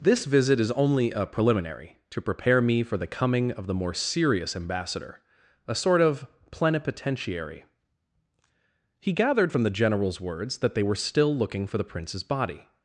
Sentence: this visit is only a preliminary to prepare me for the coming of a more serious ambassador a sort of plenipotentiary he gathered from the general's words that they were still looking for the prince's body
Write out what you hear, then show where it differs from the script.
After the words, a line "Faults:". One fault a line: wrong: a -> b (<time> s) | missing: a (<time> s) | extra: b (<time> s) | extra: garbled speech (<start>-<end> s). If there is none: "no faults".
this visit is only a preliminary to prepare me for the coming of the more serious ambassador a sort of plenipotentiary he gathered from the general's words that they were still looking for the prince's body
Faults:
wrong: a -> the (3.7 s)